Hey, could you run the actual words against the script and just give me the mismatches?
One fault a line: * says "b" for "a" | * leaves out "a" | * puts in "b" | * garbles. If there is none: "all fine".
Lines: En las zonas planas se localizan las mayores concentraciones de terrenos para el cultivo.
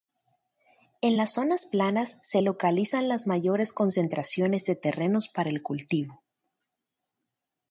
all fine